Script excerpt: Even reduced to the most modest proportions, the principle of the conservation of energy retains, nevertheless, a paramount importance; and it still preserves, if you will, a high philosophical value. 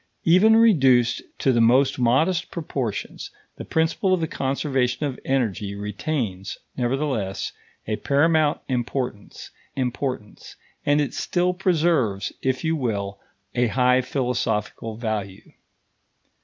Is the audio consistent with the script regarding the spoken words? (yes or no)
no